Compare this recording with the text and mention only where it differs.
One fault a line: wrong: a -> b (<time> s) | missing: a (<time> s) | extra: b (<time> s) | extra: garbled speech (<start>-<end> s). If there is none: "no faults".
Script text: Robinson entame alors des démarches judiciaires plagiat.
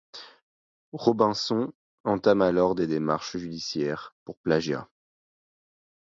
extra: pour (4.2 s)